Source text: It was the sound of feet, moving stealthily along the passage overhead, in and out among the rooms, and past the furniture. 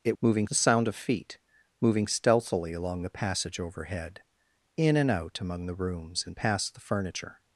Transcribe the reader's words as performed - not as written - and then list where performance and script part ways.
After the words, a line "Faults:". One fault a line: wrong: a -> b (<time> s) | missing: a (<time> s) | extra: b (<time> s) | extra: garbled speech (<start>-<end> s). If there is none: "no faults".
It moving the sound of feet, moving stealthily along the passage overhead, in and out among the rooms, and past the furniture.
Faults:
wrong: was -> moving (0.2 s)